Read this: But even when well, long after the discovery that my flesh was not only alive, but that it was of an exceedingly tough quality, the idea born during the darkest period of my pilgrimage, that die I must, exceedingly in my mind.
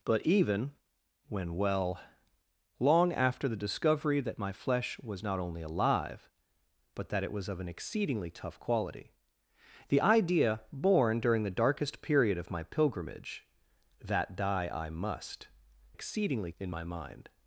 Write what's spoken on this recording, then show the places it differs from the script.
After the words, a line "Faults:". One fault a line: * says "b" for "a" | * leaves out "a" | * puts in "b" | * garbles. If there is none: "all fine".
But even when well, long after the discovery that my flesh was not only alive, but that it was of an exceedingly tough quality, the idea born during the darkest period of my pilgrimage, that die I must, exceedingly in my mind.
Faults:
all fine